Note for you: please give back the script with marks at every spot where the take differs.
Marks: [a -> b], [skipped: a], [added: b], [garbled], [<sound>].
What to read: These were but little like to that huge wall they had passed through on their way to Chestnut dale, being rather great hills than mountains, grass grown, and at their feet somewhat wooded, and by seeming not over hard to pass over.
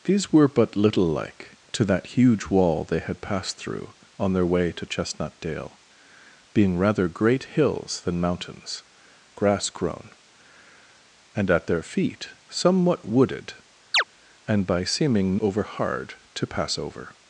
These were but little like to that huge wall they had passed through on their way to Chestnut dale, being rather great hills than mountains, grass grown, and at their feet somewhat wooded, [chirp] and by seeming [skipped: not] over hard to pass over.